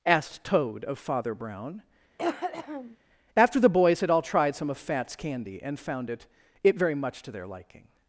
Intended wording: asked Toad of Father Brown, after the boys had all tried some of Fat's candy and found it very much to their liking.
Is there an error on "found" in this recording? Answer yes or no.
no